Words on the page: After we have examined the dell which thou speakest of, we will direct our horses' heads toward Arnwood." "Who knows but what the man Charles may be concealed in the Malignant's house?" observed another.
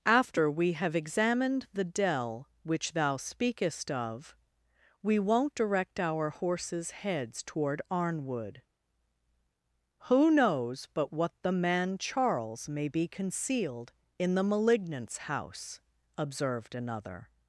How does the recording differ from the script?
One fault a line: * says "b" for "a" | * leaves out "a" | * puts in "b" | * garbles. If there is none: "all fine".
* says "won't" for "will"